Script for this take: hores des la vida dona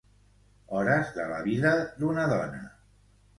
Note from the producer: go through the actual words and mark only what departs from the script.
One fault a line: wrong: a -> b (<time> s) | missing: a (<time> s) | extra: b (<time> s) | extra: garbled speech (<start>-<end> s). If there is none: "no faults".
wrong: des -> de (1.2 s)
extra: d'una (2.0 s)